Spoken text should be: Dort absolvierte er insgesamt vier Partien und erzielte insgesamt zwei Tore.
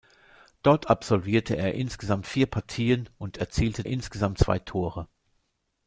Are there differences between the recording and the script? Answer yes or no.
no